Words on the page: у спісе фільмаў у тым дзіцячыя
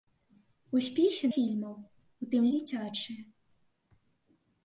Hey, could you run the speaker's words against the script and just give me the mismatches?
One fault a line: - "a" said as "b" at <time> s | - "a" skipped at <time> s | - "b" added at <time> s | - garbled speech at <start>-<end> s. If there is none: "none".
none